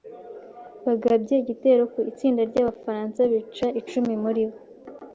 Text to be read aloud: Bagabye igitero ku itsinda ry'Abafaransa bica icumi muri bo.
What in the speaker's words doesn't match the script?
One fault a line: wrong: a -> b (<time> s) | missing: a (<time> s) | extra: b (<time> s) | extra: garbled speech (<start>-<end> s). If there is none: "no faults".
no faults